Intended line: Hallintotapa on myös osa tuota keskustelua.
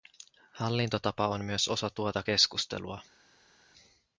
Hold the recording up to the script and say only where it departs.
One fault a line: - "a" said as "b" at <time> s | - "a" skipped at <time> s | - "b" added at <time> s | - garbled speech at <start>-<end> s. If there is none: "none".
none